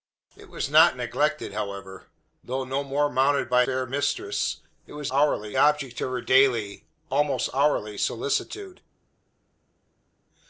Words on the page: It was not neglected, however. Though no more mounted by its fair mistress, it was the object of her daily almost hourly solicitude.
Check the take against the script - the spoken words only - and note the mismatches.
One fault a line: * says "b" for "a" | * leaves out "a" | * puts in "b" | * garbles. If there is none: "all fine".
* leaves out "its"
* says "hourly" for "the"